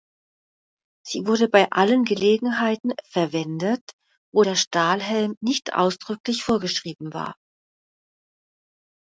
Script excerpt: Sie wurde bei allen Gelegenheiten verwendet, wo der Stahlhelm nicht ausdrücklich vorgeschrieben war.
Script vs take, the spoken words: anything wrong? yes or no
no